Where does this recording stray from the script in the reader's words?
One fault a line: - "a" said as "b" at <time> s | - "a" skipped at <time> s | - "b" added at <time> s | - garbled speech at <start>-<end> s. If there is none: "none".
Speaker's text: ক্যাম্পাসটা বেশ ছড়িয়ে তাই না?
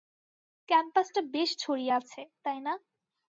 - "আছে" added at 1.9 s